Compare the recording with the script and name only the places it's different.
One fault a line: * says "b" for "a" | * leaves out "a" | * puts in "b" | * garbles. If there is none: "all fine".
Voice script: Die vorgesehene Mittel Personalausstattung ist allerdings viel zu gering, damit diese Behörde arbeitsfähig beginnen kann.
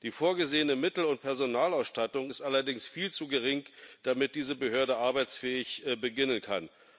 * puts in "und"